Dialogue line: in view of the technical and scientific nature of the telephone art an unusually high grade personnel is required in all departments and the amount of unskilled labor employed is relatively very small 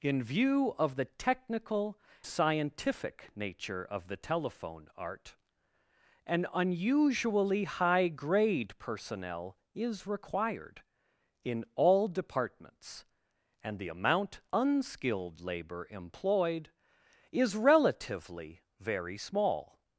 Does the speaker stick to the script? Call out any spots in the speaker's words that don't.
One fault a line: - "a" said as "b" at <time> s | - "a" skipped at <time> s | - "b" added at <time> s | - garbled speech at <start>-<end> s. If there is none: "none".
- "and" skipped at 2.0 s
- "of" skipped at 14.4 s